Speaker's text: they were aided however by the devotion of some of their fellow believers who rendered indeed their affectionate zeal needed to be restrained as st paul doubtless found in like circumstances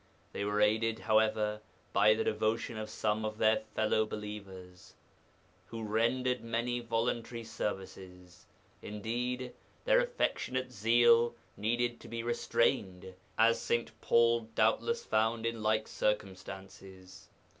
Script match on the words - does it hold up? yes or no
no